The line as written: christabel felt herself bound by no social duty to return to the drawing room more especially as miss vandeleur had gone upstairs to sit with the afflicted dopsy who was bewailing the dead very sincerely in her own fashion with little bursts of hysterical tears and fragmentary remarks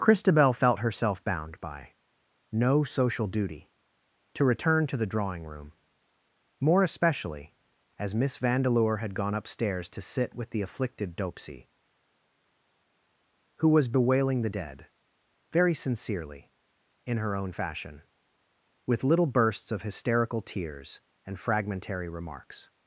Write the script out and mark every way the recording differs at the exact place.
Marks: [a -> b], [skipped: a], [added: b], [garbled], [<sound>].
christabel felt herself bound by no social duty to return to the drawing room more especially as miss vandeleur had gone upstairs to sit with the afflicted dopsy who was bewailing the dead very sincerely in her own fashion with little bursts of hysterical tears and fragmentary remarks